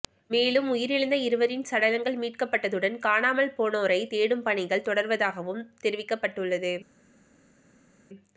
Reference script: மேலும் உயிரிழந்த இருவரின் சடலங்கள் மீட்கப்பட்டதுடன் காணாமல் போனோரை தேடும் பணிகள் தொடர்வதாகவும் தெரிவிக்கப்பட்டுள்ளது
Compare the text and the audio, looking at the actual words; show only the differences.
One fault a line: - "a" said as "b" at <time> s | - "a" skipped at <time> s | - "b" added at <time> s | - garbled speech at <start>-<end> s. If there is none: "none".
none